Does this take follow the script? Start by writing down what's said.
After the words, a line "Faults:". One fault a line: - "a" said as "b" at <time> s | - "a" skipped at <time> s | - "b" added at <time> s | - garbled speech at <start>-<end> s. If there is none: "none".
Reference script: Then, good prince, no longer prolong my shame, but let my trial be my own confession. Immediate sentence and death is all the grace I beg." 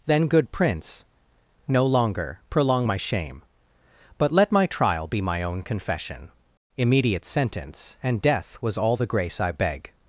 Then, good prince, no longer prolong my shame, but let my trial be my own confession. Immediate sentence and death was all the grace I beg."
Faults:
- "is" said as "was" at 8.6 s